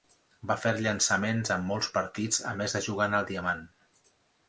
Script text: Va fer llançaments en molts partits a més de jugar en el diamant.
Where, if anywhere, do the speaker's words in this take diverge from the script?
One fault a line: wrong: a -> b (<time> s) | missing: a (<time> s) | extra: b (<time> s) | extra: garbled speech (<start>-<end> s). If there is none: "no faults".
no faults